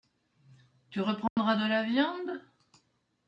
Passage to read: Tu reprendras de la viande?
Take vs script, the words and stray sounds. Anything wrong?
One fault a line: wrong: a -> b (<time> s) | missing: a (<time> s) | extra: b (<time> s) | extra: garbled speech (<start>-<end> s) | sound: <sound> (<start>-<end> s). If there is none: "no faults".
sound: dropout (1.3-1.4 s)